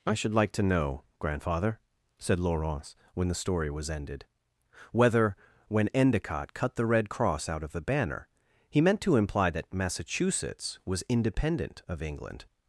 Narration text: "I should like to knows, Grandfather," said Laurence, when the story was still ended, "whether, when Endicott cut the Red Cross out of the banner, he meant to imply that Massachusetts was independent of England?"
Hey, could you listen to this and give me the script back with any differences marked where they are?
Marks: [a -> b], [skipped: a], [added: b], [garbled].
"I should like to [knows, -> know] Grandfather," said Laurence, when the story was [skipped: still] ended, "whether, when Endicott cut the Red Cross out of the banner, he meant to imply that Massachusetts was independent of England?"